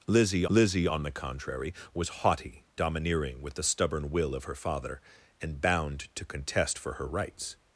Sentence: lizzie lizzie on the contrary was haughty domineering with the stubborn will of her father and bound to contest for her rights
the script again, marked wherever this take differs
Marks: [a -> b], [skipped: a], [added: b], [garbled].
lizzie lizzie on the contrary was haughty domineering with the stubborn will of her father and bound to contest for her rights